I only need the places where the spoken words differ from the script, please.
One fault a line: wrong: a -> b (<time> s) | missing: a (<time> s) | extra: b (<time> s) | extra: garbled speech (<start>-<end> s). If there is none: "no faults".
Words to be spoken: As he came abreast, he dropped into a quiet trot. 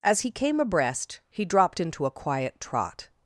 no faults